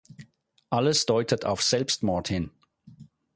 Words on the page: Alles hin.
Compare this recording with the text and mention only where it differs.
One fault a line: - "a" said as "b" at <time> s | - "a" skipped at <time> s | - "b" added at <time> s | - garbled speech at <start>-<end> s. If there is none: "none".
- "deutet auf Selbstmord" added at 1.0 s